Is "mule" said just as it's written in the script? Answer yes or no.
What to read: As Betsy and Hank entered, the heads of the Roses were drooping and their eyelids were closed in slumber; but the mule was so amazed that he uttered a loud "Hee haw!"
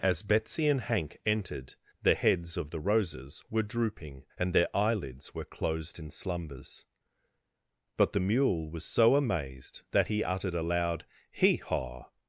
yes